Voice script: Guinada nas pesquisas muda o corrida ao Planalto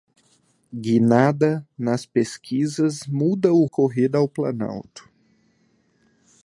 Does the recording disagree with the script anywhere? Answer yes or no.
no